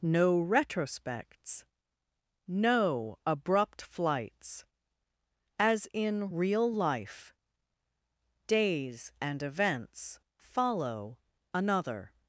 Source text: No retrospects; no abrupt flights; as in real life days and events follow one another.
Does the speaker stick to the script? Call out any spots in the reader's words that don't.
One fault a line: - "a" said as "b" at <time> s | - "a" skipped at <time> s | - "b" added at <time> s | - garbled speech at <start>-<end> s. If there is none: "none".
- "one" skipped at 11.2 s